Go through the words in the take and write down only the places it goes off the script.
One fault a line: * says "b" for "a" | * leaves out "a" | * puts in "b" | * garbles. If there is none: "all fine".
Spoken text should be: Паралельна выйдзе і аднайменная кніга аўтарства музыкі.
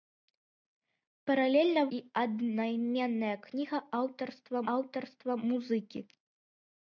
* leaves out "выйдзе"
* puts in "аўтарства"